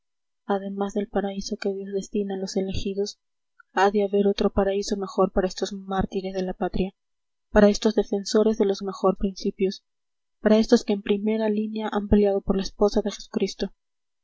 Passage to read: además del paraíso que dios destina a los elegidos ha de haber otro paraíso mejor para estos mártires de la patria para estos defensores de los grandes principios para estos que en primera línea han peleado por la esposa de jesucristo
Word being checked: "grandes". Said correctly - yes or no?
no